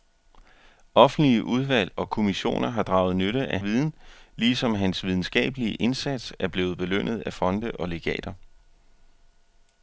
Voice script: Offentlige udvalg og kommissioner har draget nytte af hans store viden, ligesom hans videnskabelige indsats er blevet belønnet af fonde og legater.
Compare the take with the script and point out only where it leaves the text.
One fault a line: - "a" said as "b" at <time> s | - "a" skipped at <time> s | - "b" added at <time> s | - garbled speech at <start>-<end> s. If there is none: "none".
- "hans store" skipped at 3.6 s